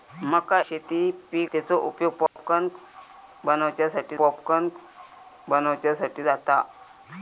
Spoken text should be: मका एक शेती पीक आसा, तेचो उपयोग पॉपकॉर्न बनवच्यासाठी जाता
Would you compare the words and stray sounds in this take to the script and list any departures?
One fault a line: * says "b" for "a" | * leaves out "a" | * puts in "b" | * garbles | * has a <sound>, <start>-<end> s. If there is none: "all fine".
* leaves out "एक"
* leaves out "आसा"
* has a dropout, 2.3-2.4 s
* puts in "पॉपकॉर्न बनवच्यासाठी"